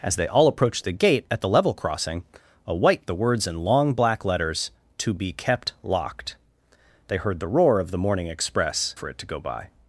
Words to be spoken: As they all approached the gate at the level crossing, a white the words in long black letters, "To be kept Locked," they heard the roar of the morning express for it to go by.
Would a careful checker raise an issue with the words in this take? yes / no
no